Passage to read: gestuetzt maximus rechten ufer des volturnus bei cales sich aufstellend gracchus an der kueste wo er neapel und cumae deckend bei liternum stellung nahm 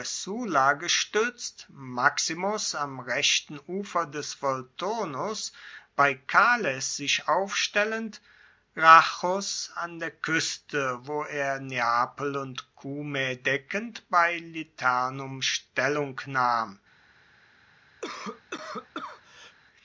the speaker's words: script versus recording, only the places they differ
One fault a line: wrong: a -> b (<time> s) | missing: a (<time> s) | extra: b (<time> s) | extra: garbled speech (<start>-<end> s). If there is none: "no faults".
extra: am (2.7 s)